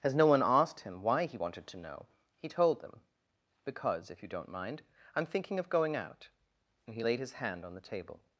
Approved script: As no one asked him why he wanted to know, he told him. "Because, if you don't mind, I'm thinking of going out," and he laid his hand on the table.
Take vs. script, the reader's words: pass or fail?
fail